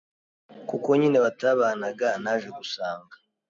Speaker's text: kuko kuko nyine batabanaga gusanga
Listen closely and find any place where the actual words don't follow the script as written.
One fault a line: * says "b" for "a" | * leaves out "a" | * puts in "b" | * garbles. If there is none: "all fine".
* leaves out "kuko"
* puts in "naje"